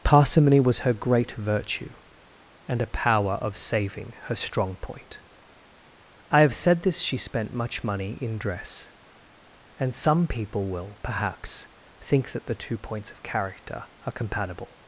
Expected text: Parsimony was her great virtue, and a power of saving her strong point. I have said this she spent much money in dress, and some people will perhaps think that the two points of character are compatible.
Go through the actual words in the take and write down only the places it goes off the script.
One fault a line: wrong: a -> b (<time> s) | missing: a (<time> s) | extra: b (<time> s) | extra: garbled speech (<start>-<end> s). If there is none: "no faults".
no faults